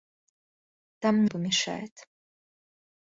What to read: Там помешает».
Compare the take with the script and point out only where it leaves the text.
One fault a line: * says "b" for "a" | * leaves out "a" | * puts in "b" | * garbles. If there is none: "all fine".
all fine